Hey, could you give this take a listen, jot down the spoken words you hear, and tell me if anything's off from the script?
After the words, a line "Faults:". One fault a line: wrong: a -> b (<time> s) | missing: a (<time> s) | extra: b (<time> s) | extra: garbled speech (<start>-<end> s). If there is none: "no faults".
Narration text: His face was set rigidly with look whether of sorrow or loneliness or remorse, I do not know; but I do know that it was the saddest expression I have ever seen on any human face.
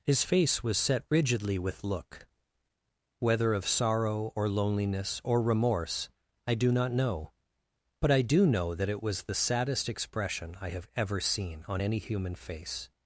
His face was set rigidly with look whether of sorrow or loneliness or remorse, I do not know; but I do know that it was the saddest expression I have ever seen on any human face.
Faults:
no faults